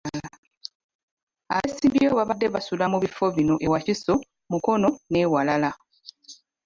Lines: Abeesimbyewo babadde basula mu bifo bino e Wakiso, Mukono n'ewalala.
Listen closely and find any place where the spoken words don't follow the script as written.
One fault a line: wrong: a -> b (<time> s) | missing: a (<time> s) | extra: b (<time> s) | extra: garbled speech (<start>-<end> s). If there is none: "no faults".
no faults